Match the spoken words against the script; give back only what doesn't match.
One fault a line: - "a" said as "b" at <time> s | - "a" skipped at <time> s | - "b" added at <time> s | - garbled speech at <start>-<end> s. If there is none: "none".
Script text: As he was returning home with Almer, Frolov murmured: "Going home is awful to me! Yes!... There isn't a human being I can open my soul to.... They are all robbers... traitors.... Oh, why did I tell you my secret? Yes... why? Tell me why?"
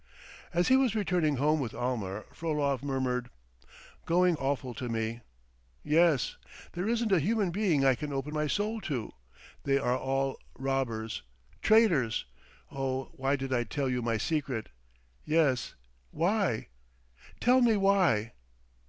- "home is" skipped at 4.3 s